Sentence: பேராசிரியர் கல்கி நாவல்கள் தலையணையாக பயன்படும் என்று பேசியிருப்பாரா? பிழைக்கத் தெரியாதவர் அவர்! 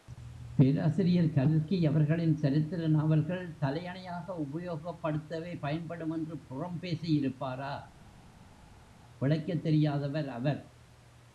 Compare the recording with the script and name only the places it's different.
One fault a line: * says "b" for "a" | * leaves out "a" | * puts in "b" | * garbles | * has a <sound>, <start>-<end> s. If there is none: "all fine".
* puts in "அவர்களின் சரித்திர"
* puts in "உபயோகப்படுத்தவே"
* puts in "புறம்"